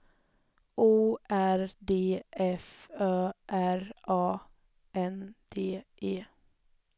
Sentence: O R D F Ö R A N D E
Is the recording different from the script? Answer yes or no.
no